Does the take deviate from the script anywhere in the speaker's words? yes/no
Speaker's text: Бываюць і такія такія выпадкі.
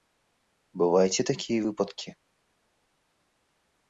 yes